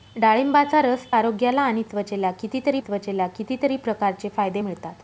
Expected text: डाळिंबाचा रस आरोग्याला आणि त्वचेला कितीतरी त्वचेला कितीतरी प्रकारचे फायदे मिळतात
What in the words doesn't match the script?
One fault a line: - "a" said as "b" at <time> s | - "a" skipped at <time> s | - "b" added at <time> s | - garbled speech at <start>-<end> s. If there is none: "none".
none